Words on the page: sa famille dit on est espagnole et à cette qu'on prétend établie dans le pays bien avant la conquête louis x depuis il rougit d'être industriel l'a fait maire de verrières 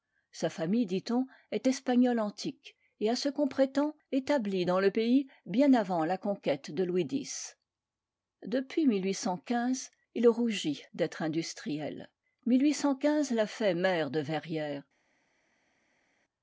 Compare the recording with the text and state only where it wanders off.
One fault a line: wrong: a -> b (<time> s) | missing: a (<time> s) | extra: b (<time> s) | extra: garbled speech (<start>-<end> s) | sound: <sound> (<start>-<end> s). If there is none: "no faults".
extra: antique (2.2 s)
wrong: cette -> ce (3.2 s)
extra: de (6.7 s)